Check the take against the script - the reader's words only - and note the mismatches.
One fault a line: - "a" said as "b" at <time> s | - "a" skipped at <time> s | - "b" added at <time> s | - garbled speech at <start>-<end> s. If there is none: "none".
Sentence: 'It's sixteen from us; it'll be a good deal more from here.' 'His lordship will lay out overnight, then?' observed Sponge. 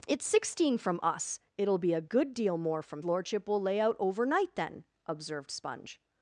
- "here His" skipped at 3.0 s